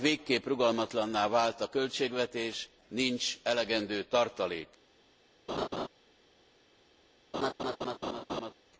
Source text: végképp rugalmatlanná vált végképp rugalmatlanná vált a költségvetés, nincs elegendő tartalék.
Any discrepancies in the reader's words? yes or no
yes